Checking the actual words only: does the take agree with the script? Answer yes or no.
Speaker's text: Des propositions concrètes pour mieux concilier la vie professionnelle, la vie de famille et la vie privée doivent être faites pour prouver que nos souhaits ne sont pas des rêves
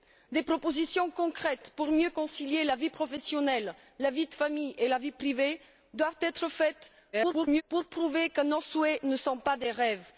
no